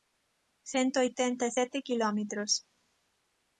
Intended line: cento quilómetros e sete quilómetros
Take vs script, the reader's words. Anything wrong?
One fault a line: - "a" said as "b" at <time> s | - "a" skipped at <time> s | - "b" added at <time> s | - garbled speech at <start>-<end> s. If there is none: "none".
- "quilómetros" said as "oitenta" at 1.1 s